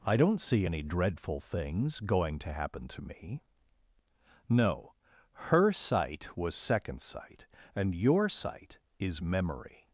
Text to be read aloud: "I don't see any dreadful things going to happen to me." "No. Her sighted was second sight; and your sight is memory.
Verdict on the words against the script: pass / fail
fail